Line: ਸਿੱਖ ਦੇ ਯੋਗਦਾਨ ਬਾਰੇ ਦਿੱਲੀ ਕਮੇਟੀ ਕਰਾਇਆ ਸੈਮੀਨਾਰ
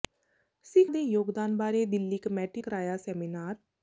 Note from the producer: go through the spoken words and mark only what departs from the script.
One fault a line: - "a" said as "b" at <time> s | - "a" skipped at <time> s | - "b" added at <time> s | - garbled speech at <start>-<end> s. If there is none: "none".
none